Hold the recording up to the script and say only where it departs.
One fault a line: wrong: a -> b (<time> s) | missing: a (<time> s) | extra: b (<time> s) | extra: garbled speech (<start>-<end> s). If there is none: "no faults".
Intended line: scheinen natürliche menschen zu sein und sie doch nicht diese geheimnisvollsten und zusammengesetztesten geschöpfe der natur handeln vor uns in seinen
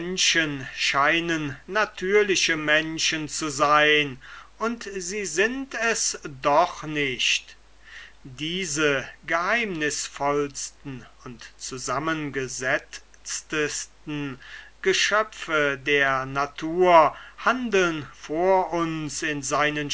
extra: sind es (5.3 s)